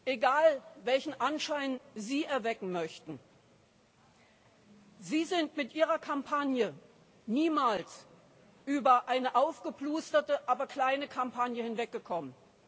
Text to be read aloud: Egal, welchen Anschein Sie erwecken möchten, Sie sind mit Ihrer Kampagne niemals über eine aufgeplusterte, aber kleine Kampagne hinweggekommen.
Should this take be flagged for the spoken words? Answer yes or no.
no